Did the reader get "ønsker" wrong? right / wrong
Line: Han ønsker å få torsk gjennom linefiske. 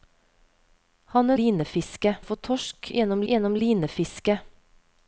wrong